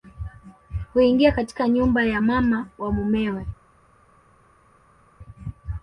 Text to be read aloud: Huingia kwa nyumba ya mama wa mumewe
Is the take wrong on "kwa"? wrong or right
wrong